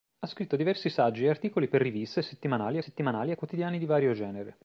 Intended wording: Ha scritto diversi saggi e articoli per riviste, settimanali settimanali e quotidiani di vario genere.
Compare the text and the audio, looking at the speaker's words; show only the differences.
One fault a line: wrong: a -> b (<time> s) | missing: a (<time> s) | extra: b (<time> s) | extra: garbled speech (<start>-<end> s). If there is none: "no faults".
no faults